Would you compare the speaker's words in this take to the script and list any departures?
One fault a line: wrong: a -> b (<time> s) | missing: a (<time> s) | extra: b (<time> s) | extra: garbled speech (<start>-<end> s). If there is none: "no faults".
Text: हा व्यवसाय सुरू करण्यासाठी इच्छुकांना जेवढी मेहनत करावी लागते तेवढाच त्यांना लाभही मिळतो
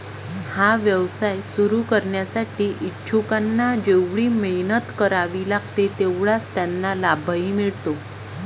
no faults